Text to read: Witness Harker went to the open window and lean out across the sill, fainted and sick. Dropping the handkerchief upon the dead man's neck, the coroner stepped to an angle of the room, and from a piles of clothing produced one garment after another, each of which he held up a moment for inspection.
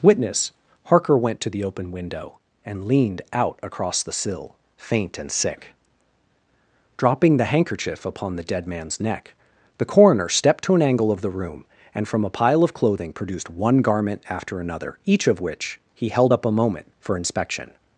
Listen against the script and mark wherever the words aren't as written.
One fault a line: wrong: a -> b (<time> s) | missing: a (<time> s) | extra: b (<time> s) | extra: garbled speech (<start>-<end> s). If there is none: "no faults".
wrong: lean -> leaned (2.9 s)
wrong: fainted -> faint (4.8 s)
wrong: piles -> pile (12.3 s)